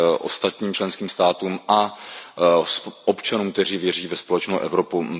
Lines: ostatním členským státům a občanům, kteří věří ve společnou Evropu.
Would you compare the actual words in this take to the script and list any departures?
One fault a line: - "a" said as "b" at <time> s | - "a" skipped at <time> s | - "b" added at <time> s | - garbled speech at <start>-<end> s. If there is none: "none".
none